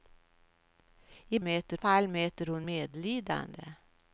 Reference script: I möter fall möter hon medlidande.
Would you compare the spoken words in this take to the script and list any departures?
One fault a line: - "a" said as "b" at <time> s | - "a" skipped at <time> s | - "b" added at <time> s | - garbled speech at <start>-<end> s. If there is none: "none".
none